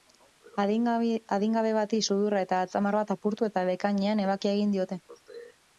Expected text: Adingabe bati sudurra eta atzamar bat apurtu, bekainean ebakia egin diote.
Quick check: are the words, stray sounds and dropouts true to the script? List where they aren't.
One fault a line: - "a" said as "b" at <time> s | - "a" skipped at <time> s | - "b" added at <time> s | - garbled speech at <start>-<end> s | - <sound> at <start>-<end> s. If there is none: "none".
- "eta" added at 3.5 s